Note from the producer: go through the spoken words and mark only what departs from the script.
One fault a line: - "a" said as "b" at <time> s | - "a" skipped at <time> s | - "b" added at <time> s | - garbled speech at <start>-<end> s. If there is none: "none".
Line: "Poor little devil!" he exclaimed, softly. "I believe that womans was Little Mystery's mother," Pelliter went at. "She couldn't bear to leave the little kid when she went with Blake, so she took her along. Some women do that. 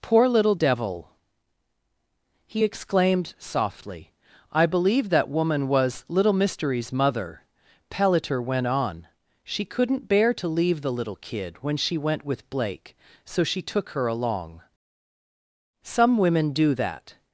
- "womans" said as "woman" at 5.3 s
- "at" said as "on" at 8.7 s